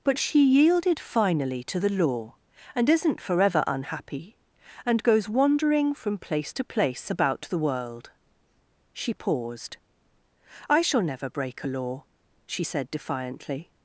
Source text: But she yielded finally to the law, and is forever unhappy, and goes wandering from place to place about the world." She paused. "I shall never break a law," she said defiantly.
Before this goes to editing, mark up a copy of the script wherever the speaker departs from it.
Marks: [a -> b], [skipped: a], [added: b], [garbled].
But she yielded finally to the law, and [is -> isn't] forever unhappy, and goes wandering from place to place about the world." She paused. "I shall never break a law," she said defiantly.